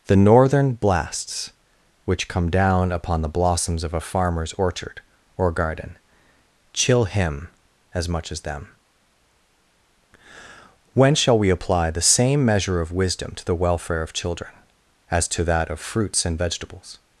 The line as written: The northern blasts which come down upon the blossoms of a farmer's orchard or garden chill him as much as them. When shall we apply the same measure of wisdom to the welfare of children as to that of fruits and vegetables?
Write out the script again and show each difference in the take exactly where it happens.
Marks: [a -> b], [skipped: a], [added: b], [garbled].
The northern blasts which come down upon the blossoms of a farmer's orchard or garden chill him as much as them. When shall we apply the same measure of wisdom to the welfare of children as to that of fruits and vegetables?